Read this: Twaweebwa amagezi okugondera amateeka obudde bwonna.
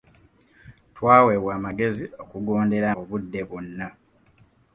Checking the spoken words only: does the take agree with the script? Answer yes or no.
no